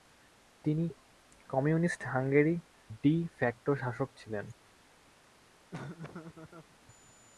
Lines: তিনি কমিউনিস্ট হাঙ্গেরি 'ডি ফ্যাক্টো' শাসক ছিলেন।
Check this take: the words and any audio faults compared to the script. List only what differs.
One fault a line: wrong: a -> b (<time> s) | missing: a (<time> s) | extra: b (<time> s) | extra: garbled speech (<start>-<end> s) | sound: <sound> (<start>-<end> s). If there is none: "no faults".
sound: laugh (5.7-6.8 s)